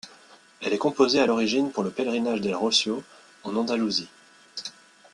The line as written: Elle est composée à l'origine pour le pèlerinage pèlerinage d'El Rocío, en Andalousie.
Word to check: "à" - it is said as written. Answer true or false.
true